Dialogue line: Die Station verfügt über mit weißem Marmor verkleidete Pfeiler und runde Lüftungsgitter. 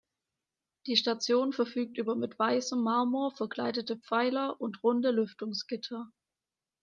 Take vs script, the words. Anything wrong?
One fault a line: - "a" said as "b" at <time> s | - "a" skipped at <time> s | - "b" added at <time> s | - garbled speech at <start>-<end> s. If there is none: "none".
none